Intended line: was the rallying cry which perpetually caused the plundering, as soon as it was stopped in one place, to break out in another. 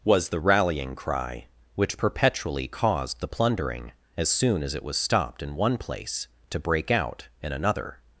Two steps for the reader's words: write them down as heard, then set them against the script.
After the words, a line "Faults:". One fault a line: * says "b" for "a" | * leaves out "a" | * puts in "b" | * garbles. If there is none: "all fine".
was the rallying cry which perpetually caused the plundering, as soon as it was stopped in one place, to break out in another.
Faults:
all fine